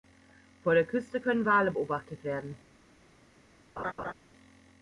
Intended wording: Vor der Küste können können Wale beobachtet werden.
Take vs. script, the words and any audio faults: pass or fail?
fail